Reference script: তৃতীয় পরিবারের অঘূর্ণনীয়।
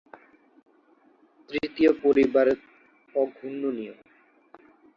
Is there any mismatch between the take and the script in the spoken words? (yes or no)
no